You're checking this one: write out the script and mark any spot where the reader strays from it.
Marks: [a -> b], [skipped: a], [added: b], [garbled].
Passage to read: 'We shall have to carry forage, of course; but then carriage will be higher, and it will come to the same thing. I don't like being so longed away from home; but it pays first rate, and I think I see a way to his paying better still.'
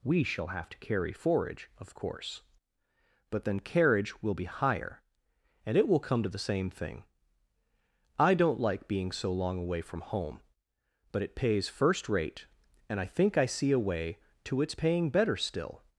'We shall have to carry forage, of course; but then carriage will be higher, and it will come to the same thing. I don't like being so [longed -> long] away from home; but it pays first rate, and I think I see a way to [his -> its] paying better still.'